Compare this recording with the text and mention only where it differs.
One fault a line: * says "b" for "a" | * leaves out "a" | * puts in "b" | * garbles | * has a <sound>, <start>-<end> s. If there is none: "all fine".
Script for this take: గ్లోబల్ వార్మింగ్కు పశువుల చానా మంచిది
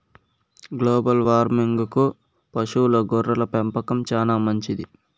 * puts in "గొర్రెల పెంపకం"